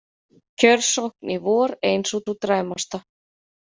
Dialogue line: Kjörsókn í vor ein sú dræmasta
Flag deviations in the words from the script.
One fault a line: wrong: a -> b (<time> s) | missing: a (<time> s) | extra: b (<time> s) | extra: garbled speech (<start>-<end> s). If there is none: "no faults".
extra: sú (2.3 s)